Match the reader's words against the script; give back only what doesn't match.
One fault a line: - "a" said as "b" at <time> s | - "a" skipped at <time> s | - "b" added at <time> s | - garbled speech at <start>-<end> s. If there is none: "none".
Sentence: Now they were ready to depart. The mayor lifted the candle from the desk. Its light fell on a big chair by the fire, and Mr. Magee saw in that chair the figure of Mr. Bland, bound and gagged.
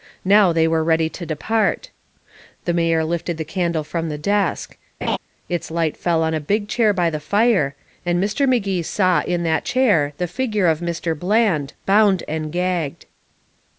none